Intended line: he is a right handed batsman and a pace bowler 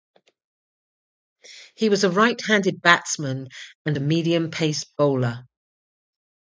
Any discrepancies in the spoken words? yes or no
yes